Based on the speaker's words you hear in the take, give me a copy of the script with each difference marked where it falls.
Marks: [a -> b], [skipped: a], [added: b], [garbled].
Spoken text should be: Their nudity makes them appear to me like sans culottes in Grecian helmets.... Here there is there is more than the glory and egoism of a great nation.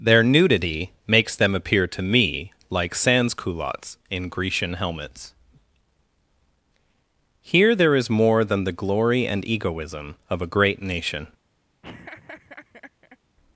Their nudity makes them appear to me like sans culottes in Grecian helmets.... Here there is [skipped: there is] more than the glory and egoism of a great nation.